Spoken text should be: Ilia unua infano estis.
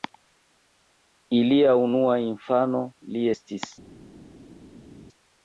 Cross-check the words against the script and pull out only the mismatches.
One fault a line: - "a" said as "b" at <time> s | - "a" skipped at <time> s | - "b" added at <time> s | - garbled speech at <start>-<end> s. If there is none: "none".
- "li" added at 3.1 s